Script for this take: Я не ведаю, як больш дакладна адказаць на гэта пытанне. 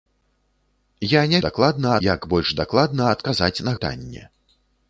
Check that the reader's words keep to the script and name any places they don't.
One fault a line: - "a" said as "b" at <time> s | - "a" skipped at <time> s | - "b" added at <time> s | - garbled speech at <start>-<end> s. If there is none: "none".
- "ведаю" said as "дакладна" at 1.5 s
- "гэта" skipped at 3.8 s